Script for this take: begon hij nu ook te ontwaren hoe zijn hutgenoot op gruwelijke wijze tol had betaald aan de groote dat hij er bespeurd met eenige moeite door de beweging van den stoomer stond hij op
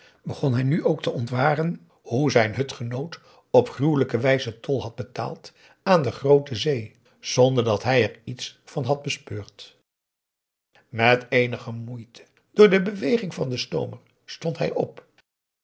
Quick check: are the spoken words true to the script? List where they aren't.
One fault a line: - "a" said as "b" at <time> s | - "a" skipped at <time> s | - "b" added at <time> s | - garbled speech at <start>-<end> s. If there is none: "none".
- "zee zonder" added at 6.5 s
- "iets van had" added at 8.2 s